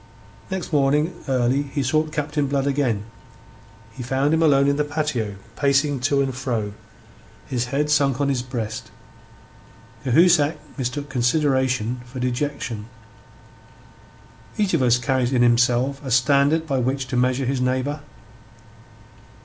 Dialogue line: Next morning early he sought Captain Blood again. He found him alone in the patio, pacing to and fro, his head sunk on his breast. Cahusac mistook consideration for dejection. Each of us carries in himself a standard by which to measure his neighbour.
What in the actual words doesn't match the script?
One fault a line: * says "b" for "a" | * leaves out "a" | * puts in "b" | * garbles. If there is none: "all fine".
all fine